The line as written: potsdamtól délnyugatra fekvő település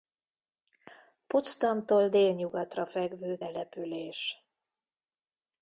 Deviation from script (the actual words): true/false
false